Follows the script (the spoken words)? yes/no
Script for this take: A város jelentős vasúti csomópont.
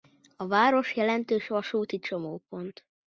yes